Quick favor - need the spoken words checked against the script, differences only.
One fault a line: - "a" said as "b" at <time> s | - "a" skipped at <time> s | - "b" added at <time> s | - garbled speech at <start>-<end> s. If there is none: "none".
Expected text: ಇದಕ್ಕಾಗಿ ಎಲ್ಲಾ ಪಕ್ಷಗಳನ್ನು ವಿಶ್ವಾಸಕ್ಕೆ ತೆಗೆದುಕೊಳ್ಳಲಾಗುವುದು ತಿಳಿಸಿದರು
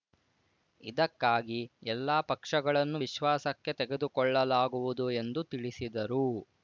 - "ಎಂದು" added at 5.2 s